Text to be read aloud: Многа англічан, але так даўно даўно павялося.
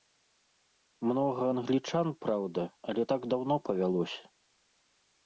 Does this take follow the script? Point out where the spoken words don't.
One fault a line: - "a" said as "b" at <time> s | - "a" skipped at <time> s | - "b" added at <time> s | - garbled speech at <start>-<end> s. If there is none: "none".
- "праўда" added at 2.2 s
- "даўно" skipped at 3.5 s